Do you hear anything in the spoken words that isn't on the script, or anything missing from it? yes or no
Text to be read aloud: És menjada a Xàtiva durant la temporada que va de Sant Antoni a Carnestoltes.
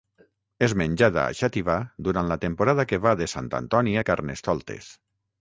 no